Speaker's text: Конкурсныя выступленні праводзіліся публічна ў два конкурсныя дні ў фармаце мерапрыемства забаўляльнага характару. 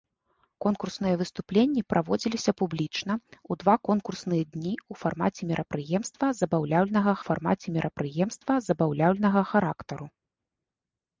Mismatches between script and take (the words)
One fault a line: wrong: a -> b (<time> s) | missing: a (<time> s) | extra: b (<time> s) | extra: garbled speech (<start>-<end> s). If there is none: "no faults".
extra: фармаце мерапрыемства забаўляльнага (7.3 s)